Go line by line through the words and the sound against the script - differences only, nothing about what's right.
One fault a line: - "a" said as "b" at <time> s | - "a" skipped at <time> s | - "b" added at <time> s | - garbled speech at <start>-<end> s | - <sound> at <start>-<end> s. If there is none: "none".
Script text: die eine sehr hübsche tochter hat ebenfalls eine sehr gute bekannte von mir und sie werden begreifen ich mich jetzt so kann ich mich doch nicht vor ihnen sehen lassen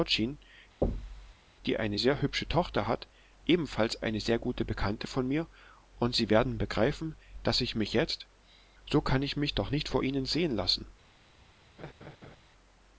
- thud at 0.8-1.3 s
- "daß" added at 7.4 s
- laugh at 11.8-12.4 s